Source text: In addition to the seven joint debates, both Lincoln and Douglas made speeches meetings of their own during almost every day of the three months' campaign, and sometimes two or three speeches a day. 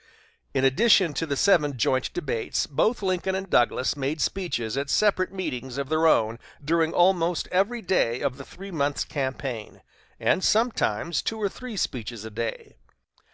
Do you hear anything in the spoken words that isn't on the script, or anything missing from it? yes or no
yes